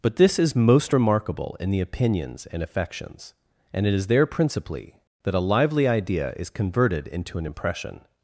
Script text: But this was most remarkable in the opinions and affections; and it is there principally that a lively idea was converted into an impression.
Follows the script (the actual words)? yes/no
no